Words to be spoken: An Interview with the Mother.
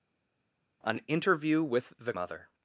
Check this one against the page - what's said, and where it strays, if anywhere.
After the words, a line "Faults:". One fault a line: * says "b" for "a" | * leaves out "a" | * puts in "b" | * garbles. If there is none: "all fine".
An Interview with the Mother.
Faults:
all fine